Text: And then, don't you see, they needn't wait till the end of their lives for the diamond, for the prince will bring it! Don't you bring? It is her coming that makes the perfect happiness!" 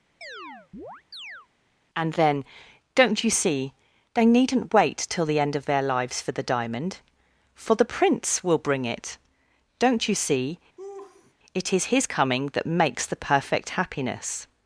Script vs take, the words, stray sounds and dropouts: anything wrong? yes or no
yes